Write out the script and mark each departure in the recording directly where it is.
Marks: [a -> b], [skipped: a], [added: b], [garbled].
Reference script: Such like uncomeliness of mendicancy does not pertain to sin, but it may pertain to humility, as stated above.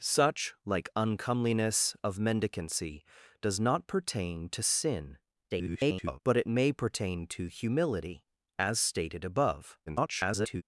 Such like uncomeliness of mendicancy does not pertain to sin, [garbled] but it may pertain to humility, as stated above. [garbled]